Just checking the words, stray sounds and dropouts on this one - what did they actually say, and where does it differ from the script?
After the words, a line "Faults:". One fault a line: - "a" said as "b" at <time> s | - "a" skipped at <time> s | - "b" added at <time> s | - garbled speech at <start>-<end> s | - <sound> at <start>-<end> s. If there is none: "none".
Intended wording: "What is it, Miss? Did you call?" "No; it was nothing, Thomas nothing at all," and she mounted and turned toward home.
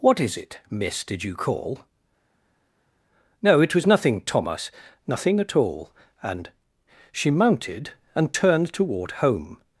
"What is it, Miss? Did you call?" "No; it was nothing, Thomas nothing at all," and she mounted and turned toward home.
Faults:
none